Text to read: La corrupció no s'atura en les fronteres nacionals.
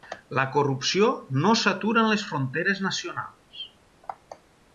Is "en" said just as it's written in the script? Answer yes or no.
yes